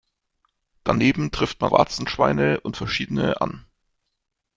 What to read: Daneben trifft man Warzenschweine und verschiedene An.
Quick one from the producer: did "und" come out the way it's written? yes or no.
yes